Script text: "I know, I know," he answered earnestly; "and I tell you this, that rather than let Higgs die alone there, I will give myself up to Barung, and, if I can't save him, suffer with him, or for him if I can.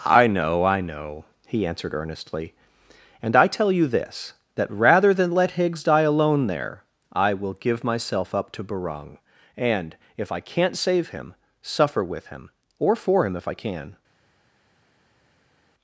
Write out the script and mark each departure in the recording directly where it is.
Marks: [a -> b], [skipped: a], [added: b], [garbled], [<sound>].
"I know, I know," he answered earnestly; "and I tell you this, that rather than let Higgs die alone there, I will give myself up to Barung, and, if I can't save him, suffer with him, or for him if I can.